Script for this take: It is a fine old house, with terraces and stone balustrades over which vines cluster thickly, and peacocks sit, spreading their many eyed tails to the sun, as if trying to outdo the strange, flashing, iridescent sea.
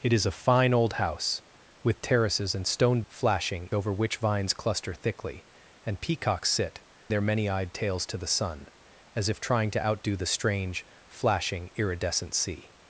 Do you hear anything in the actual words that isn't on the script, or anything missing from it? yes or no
yes